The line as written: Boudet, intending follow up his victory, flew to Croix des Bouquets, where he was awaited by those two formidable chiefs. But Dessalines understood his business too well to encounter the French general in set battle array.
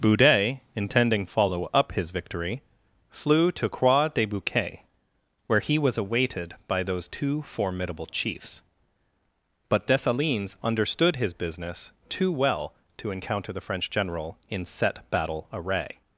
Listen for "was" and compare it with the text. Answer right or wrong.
right